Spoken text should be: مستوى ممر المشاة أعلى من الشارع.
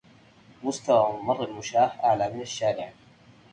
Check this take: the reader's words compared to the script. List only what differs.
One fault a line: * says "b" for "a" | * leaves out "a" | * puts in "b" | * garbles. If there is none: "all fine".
all fine